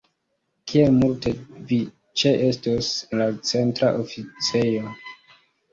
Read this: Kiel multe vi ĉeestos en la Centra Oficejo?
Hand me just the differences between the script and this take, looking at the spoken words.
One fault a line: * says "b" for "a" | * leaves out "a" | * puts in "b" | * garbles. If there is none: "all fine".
* leaves out "en"